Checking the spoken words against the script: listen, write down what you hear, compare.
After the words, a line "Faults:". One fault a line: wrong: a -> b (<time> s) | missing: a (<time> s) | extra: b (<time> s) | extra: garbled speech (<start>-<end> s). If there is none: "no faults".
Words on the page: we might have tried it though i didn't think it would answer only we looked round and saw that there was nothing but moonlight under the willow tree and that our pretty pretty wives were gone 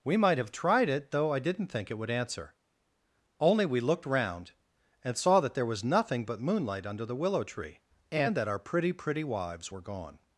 we might have tried it though i didn't think it would answer only we looked round and saw that there was nothing but moonlight under the willow tree and that our pretty pretty wives were gone
Faults:
no faults